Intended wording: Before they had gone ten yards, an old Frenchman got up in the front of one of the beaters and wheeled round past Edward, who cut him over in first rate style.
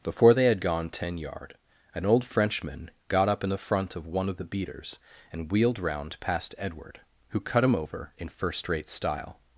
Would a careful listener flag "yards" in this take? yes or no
yes